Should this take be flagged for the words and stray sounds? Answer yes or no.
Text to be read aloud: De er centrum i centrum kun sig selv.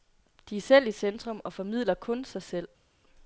yes